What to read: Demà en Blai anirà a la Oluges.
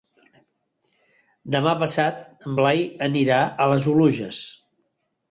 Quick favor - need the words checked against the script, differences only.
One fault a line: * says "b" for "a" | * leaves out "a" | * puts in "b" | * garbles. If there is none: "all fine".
* puts in "passat"
* says "les" for "la"